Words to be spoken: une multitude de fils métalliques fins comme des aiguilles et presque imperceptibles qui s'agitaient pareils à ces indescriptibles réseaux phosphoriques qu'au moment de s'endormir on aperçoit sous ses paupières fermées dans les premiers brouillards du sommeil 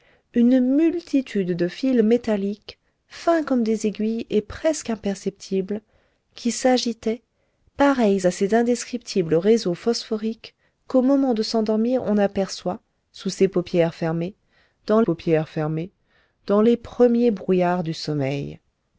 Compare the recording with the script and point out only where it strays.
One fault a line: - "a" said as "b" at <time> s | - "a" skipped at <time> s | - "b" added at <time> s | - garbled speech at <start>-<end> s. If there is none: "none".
- "paupières fermées dans" added at 15.0 s